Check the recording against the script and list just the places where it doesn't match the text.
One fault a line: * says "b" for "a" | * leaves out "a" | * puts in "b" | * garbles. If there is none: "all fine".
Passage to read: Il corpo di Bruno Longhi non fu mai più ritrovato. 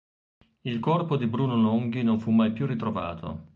all fine